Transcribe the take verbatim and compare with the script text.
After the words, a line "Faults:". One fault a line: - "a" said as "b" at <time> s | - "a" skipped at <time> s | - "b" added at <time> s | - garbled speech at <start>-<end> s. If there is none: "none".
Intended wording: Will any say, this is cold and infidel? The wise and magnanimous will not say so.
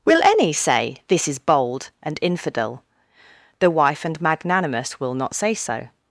Will any say, this is bold and infidel? The wife and magnanimous will not say so.
Faults:
- "cold" said as "bold" at 1.4 s
- "wise" said as "wife" at 3.7 s